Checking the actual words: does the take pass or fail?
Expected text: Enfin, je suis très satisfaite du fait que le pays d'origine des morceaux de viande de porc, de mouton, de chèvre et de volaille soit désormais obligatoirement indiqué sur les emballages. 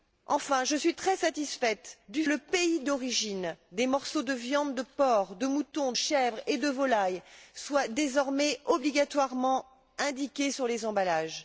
fail